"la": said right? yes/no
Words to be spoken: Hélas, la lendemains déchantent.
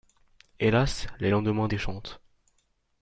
no